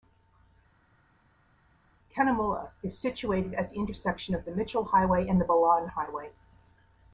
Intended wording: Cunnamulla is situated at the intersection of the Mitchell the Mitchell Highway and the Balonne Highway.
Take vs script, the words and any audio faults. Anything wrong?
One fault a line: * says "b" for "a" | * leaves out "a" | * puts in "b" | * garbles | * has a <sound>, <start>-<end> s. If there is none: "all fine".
* leaves out "the Mitchell"